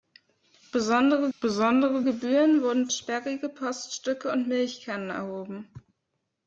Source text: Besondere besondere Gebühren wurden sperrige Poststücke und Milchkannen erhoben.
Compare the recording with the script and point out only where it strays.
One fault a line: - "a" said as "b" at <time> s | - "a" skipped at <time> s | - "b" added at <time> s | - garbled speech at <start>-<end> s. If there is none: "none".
none